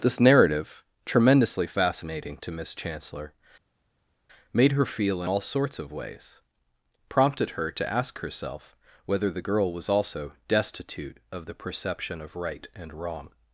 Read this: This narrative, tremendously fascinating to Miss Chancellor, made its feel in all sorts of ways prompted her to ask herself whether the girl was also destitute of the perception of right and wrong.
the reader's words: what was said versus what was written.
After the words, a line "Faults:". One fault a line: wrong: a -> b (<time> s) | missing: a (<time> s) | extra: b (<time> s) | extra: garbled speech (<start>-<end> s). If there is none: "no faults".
This narrative, tremendously fascinating to Miss Chancellor, made her feel in all sorts of ways prompted her to ask herself whether the girl was also destitute of the perception of right and wrong.
Faults:
wrong: its -> her (4.7 s)